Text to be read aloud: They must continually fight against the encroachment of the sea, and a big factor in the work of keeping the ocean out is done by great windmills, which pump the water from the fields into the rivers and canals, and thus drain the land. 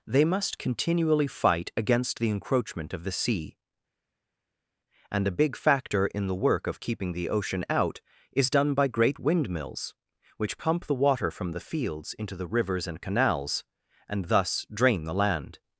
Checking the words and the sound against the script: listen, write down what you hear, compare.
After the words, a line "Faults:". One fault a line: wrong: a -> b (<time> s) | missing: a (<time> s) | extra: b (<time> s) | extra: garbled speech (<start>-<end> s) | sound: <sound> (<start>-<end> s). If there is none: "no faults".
They must continually fight against the encroachment of the sea, and a big factor in the work of keeping the ocean out is done by great windmills, which pump the water from the fields into the rivers and canals, and thus drain the land.
Faults:
no faults